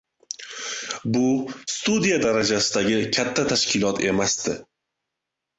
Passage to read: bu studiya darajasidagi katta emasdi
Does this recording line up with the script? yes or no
no